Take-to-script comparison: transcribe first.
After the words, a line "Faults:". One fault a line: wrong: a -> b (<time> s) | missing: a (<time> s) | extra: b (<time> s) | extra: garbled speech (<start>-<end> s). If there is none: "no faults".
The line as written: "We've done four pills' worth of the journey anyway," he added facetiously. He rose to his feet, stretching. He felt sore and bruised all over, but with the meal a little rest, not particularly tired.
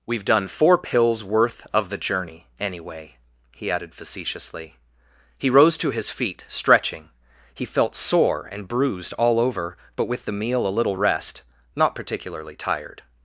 "We've done four pills' worth of the journey anyway," he added facetiously. He rose to his feet, stretching. He felt sore and bruised all over, but with the meal a little rest, not particularly tired.
Faults:
no faults